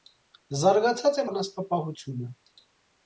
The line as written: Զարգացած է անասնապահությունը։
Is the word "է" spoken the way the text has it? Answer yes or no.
yes